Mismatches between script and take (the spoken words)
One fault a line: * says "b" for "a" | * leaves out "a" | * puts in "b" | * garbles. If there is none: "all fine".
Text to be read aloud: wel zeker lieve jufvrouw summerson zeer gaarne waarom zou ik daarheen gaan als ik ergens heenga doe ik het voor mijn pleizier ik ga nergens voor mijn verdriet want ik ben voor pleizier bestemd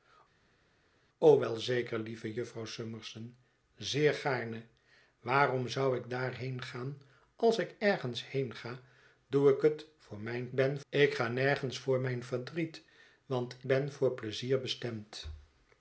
* says "ben" for "pleizier"
* leaves out "ik"